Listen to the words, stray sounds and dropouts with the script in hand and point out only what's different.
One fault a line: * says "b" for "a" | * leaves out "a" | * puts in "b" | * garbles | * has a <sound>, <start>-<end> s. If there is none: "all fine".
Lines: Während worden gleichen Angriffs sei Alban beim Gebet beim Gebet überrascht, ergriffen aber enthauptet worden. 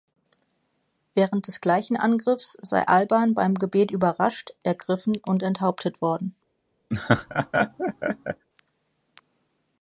* says "des" for "worden"
* leaves out "beim Gebet"
* says "und" for "aber"
* has a laugh, 6.9-8.5 s